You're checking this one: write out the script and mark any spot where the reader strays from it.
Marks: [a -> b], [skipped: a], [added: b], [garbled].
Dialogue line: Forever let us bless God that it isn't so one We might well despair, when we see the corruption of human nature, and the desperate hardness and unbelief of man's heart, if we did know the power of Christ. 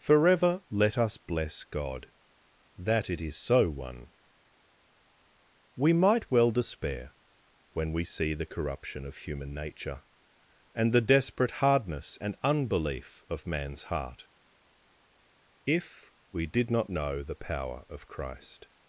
Forever let us bless God that it [isn't -> is] so one We might well despair, when we see the corruption of human nature, and the desperate hardness and unbelief of man's heart, if we did [added: not] know the power of Christ.